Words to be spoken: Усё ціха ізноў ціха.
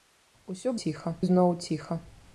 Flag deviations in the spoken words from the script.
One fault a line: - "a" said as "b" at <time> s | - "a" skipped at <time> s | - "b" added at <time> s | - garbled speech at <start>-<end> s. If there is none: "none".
none